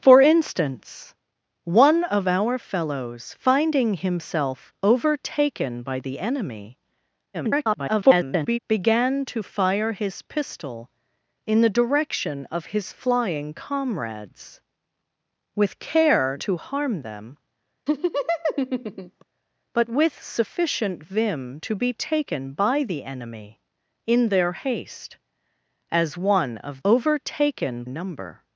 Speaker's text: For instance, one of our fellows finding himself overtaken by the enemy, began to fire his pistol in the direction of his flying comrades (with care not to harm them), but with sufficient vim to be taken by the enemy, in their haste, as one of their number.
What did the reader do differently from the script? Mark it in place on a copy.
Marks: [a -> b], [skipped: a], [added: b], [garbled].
For instance, one of our fellows finding himself overtaken by the enemy, [garbled] began to fire his pistol in the direction of his flying comrades (with care [skipped: not] to harm them), but with sufficient vim to be taken by the enemy, in their haste, as one of [their -> overtaken] number.